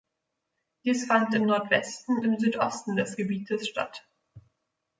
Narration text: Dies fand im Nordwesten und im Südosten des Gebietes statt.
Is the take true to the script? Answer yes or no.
no